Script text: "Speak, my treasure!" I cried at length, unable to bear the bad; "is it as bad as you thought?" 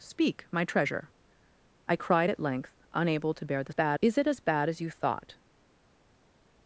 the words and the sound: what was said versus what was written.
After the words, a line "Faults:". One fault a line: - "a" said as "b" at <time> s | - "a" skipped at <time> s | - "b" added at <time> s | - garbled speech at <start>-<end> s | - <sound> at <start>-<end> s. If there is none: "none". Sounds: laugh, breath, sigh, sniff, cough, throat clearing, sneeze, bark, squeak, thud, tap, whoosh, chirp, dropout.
"Speak, my treasure!" I cried at length, unable to bear the bad; "is it as bad as you thought?"
Faults:
none